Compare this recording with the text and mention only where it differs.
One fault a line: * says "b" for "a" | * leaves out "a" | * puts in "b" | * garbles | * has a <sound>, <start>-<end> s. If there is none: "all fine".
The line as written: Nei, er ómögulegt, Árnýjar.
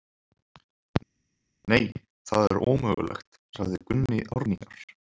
* puts in "það"
* puts in "sagði Gunni"